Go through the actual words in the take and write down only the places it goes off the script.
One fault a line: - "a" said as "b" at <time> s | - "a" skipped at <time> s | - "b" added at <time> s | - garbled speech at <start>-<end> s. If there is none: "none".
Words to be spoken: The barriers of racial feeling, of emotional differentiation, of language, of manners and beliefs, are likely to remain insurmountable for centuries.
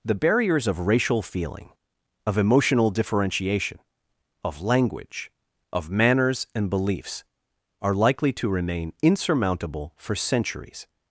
none